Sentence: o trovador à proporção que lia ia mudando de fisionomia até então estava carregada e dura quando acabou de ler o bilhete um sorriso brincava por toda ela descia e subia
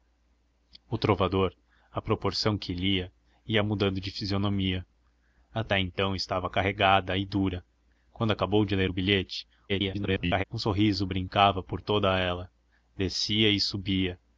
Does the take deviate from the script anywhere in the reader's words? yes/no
yes